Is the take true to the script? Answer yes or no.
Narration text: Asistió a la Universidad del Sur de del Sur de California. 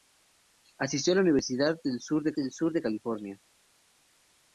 yes